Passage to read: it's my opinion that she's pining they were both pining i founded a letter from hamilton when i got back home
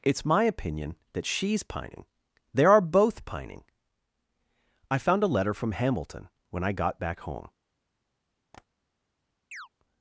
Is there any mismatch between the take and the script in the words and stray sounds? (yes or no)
yes